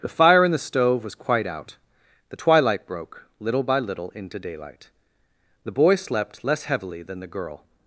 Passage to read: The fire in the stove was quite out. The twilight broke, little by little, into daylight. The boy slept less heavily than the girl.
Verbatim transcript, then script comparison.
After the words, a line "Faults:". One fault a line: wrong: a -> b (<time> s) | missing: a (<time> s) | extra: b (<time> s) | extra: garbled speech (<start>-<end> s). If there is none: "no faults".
The fire in the stove was quite out. The twilight broke, little by little, into daylight. The boy slept less heavily than the girl.
Faults:
no faults